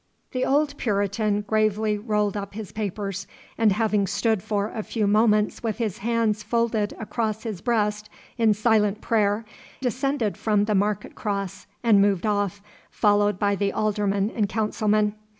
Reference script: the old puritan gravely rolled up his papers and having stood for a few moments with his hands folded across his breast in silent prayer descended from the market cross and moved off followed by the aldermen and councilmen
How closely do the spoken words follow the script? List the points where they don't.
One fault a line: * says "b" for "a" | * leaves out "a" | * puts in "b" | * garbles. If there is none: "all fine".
all fine